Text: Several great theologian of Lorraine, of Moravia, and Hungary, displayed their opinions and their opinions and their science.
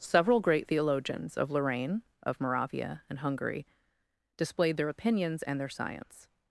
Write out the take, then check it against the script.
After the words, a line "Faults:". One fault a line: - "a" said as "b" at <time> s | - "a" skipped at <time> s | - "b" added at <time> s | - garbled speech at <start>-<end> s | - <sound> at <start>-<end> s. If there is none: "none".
Several great theologians of Lorraine, of Moravia, and Hungary, displayed their opinions and their science.
Faults:
- "theologian" said as "theologians" at 0.6 s
- "opinions and their" skipped at 5.7 s